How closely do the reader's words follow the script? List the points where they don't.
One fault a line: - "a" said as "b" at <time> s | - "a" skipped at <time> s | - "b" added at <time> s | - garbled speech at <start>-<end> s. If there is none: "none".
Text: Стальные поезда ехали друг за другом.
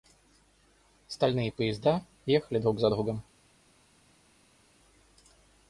none